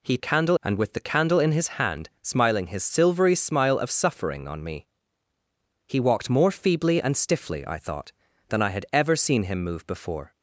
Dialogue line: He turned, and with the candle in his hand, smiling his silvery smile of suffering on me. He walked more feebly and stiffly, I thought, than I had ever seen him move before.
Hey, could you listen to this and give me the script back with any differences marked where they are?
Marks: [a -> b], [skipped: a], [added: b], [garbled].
He [turned, -> candle] and with the candle in his hand, smiling his silvery smile of suffering on me. He walked more feebly and stiffly, I thought, than I had ever seen him move before.